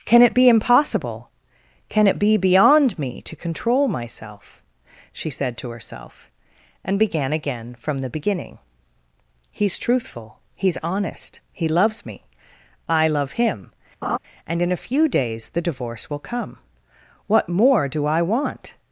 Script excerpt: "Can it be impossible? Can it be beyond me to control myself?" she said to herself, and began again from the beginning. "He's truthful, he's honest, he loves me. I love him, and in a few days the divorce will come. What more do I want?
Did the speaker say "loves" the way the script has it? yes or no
yes